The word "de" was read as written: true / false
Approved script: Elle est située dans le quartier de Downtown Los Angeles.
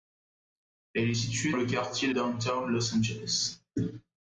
false